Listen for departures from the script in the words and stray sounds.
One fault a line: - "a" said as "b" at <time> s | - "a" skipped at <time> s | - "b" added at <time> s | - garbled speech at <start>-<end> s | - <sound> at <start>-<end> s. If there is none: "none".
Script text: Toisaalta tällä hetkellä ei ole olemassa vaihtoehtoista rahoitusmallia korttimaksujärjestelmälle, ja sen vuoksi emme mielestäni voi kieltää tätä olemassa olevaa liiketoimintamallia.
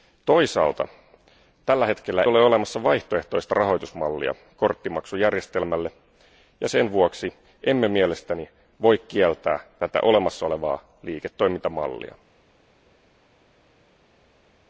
- "ei" skipped at 2.2 s